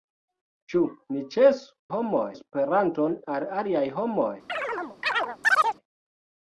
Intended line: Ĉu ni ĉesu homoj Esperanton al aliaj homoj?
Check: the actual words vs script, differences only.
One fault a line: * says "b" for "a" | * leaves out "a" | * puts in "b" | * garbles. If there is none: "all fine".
all fine